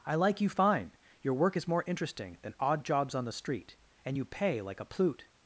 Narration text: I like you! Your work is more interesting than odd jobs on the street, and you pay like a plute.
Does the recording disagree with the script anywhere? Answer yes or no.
yes